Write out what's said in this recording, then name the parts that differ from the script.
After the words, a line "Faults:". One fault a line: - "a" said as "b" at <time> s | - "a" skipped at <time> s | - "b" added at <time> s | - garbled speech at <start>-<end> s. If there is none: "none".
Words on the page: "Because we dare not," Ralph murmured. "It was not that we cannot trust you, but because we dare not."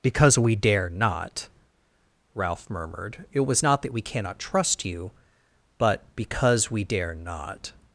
"Because we dare not," Ralph murmured. "It was not that we cannot trust you, but because we dare not."
Faults:
none